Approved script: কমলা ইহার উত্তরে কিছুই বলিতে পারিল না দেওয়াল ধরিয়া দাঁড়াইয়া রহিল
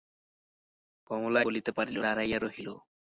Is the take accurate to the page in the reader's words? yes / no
no